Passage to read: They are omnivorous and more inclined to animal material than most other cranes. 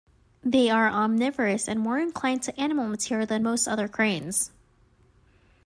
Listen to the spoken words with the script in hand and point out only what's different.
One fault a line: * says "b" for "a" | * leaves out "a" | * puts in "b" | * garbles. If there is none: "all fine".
all fine